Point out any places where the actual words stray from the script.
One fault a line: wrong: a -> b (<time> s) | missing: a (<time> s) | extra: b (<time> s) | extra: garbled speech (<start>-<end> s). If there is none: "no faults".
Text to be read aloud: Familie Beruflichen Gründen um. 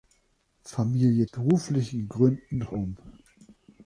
no faults